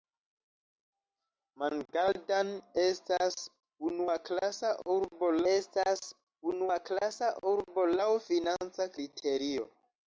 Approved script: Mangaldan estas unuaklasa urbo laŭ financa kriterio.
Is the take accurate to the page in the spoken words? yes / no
no